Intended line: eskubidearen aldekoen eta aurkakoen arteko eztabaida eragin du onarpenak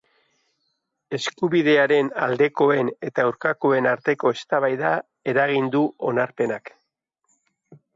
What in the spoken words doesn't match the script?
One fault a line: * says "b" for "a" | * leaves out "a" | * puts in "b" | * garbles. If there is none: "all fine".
all fine